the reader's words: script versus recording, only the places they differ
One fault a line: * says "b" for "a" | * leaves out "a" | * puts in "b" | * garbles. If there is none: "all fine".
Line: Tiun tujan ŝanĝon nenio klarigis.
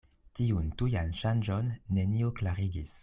all fine